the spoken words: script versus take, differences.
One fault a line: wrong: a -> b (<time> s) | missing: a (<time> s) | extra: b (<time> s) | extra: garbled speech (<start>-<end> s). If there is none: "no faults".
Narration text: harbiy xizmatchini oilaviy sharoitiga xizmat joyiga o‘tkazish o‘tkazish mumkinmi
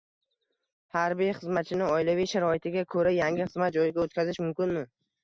extra: ko‘ra yangi (3.0 s)
missing: o‘tkazish (4.4 s)